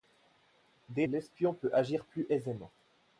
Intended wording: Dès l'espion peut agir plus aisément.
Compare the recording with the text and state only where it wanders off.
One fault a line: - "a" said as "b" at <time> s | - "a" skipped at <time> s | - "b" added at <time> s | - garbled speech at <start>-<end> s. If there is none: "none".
none